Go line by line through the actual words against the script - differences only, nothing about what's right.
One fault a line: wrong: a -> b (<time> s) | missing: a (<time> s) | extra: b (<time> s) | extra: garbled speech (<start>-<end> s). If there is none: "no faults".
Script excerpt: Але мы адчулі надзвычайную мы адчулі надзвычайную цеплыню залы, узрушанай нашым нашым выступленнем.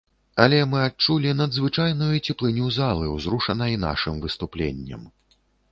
missing: мы адчулі надзвычайную (2.1 s)
missing: нашым (4.2 s)